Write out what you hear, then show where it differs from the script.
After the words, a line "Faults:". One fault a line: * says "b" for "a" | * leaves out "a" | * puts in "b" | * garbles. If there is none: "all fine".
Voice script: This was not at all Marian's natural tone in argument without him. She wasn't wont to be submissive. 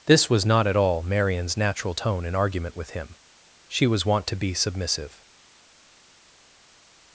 This was not at all Marian's natural tone in argument with him. She was wont to be submissive.
Faults:
* says "with" for "without"
* says "was" for "wasn't"